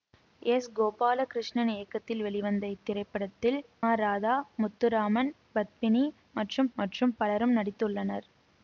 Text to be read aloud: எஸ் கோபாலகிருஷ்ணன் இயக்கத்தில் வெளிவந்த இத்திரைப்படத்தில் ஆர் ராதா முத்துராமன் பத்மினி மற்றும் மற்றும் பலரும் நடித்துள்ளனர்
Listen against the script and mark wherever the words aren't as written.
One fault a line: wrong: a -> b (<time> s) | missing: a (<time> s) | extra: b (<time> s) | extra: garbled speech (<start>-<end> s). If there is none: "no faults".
no faults